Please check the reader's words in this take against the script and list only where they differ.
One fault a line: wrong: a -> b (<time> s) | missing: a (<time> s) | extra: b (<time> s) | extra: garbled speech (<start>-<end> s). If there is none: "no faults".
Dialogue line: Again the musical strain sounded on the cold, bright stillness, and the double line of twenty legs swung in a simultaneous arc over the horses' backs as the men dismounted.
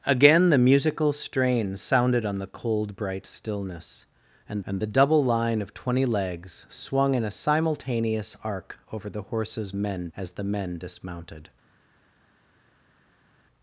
extra: and (4.7 s)
wrong: backs -> men (9.7 s)